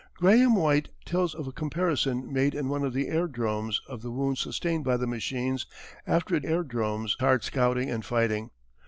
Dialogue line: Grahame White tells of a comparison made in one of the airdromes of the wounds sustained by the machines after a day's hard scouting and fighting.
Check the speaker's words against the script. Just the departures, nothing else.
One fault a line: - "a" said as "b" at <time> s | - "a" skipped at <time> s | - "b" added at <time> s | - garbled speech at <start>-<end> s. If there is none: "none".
- "day's" said as "airdromes" at 6.4 s